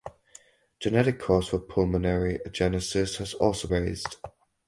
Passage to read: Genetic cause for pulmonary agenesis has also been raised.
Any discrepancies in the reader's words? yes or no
yes